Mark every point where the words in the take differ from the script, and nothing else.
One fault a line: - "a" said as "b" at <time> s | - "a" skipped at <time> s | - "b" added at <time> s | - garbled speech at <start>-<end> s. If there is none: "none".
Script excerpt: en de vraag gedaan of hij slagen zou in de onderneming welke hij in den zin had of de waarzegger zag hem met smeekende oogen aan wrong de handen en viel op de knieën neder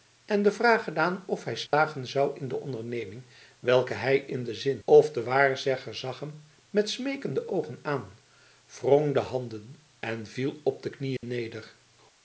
- "had" skipped at 4.8 s